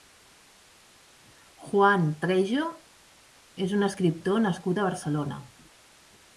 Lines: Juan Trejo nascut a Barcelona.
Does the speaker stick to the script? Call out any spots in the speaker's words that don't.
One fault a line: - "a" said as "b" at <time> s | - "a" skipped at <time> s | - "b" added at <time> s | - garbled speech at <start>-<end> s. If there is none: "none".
- "és un escriptor" added at 3.7 s